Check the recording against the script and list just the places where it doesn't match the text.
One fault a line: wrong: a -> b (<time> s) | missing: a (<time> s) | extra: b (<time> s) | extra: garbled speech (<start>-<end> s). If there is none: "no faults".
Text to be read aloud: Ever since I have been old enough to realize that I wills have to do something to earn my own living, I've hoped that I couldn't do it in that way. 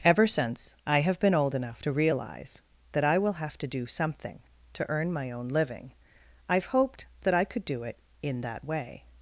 wrong: wills -> will (3.2 s)
wrong: couldn't -> could (7.4 s)